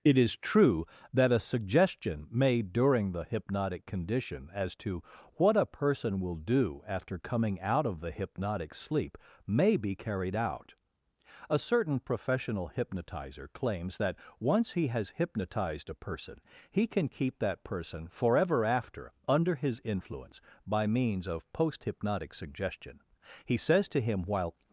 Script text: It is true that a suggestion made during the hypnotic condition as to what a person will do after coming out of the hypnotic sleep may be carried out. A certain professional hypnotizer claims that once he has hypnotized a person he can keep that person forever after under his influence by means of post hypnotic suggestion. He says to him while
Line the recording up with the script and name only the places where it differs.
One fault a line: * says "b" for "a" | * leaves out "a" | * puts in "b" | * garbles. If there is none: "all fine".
all fine